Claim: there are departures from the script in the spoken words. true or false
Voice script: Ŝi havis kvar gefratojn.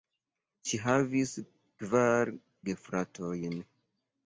false